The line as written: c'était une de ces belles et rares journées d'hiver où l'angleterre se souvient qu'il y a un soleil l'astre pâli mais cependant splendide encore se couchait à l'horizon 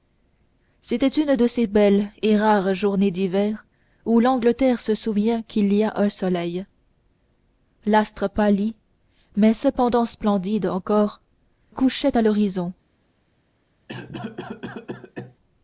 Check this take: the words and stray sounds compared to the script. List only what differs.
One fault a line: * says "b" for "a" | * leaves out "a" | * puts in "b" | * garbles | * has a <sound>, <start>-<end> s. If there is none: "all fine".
* leaves out "se"
* has a cough, 13.9-15.4 s